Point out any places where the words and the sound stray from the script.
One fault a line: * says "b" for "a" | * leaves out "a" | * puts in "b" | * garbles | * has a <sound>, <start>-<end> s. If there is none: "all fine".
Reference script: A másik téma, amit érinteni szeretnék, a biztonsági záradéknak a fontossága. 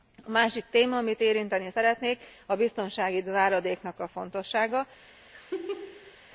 * has a laugh, 5.3-6.2 s